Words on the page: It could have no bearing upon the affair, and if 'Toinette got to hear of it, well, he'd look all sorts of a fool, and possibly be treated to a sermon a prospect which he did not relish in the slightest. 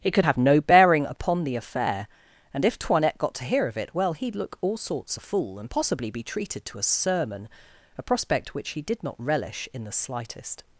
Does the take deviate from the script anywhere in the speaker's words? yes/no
yes